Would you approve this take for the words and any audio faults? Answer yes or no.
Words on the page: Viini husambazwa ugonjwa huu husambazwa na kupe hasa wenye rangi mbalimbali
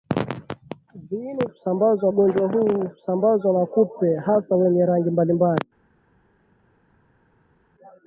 yes